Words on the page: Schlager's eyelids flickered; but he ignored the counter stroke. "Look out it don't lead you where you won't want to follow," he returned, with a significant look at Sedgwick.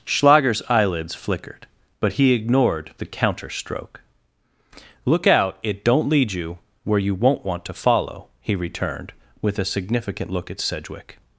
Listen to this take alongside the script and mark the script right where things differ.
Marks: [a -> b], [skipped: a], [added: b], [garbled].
Schlager's eyelids flickered; but he ignored the counter stroke. "Look out it don't lead you where you won't want to follow," he returned, with a significant look at Sedgwick.